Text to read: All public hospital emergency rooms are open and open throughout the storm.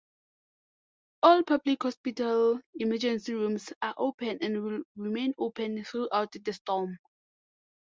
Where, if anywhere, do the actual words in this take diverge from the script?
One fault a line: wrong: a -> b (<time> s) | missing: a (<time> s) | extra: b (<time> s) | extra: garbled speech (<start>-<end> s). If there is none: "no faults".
extra: will remain (4.6 s)